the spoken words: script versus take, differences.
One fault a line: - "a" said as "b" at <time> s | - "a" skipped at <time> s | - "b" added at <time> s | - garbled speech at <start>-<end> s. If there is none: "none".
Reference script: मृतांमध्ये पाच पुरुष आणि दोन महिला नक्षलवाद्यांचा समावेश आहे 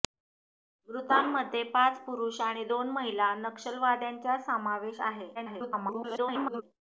- garbled speech at 5.3-6.6 s